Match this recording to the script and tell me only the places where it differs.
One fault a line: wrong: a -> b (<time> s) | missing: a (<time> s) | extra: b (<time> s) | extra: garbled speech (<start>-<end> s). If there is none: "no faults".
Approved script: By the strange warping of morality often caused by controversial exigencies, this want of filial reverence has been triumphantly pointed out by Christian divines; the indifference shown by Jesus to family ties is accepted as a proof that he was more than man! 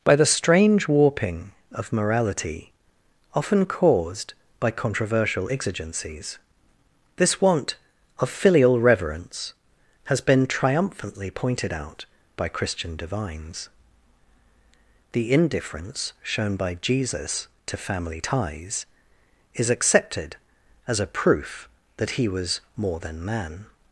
no faults